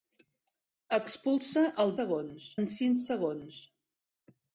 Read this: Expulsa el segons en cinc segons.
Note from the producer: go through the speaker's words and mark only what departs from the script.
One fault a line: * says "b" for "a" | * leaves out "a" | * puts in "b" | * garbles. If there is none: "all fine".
all fine